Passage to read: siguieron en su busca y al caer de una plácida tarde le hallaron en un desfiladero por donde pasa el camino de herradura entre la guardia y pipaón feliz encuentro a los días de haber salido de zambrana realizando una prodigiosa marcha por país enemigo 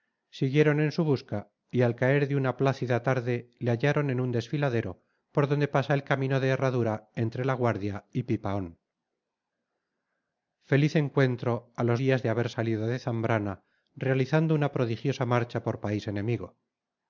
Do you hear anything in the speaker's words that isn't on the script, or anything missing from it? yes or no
no